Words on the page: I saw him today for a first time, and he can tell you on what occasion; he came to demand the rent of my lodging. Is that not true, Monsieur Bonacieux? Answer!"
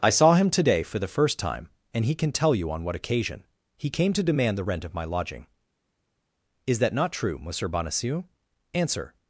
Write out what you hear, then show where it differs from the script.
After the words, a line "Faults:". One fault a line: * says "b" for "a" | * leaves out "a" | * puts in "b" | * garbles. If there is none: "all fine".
I saw him today for the first time, and he can tell you on what occasion; he came to demand the rent of my lodging. Is that not true, Monsieur Bonacieux? Answer!"
Faults:
* says "the" for "a"